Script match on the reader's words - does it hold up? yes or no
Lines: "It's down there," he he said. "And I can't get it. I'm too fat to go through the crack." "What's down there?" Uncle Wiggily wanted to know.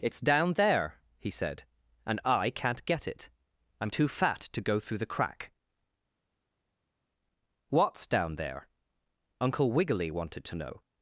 no